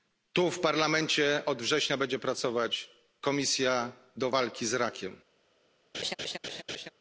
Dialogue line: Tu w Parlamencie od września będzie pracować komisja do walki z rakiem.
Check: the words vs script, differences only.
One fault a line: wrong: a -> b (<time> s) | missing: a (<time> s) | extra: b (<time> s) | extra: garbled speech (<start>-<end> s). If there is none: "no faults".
no faults